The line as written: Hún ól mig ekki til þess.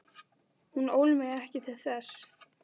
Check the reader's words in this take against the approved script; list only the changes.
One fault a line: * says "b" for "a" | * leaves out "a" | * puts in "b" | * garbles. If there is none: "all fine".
all fine